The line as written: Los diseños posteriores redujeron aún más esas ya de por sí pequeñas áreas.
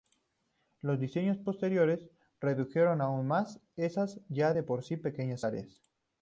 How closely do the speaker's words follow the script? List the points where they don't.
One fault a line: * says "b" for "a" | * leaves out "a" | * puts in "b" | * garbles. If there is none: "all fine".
all fine